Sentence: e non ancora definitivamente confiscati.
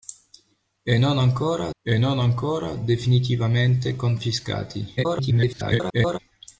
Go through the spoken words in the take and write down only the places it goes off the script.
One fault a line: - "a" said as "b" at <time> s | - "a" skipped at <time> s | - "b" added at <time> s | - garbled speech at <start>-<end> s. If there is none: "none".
- "e non ancora" added at 1.8 s
- garbled speech at 5.0-6.2 s